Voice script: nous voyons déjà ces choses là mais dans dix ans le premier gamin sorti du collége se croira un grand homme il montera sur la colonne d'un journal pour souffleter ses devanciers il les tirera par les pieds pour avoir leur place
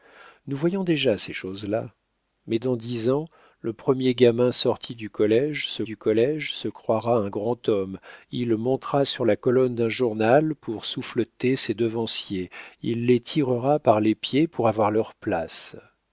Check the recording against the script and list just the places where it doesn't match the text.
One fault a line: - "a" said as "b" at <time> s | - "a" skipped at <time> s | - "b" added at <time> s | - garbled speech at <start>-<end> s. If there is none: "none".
- "du collége se" added at 5.8 s